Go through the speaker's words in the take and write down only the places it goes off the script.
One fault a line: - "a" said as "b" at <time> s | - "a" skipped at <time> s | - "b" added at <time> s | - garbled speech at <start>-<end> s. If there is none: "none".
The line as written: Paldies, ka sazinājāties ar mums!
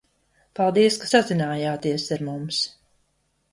none